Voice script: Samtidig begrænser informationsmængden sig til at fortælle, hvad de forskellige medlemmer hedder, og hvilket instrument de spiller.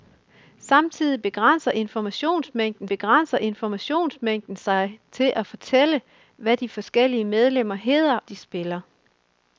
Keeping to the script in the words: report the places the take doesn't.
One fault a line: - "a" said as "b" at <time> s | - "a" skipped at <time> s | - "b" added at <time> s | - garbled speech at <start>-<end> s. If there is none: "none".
- "begrænser informationsmængden" added at 2.9 s
- "og hvilket instrument" skipped at 8.2 s